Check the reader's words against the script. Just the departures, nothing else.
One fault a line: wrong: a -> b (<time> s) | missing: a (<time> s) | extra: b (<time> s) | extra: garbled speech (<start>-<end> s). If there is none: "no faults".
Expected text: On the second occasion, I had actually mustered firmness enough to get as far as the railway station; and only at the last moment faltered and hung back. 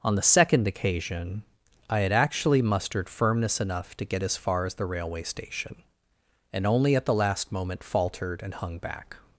no faults